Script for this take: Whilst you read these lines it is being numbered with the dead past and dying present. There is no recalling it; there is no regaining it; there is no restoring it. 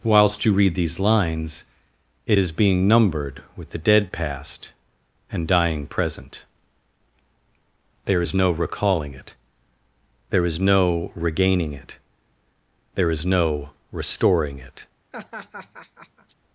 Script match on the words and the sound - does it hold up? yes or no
no